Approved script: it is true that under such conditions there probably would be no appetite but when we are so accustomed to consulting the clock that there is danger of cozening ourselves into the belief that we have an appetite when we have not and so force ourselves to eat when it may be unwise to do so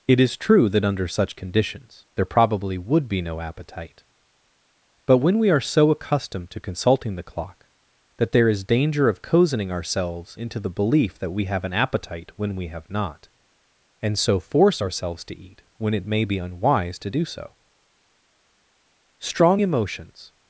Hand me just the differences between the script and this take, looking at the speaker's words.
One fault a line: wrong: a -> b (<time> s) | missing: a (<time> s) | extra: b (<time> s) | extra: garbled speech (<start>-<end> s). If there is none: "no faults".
extra: strong emotions (19.2 s)